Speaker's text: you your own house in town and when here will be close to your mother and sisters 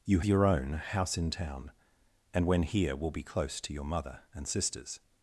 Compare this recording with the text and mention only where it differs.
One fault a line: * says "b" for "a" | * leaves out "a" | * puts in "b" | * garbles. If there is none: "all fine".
all fine